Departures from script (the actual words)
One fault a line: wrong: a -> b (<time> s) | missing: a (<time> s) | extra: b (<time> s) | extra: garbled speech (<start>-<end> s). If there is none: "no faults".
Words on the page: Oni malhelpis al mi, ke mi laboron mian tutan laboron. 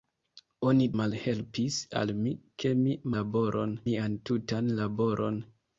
no faults